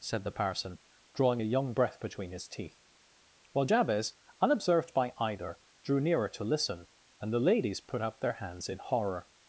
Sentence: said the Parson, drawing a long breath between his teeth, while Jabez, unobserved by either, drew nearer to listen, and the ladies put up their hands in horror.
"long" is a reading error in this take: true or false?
true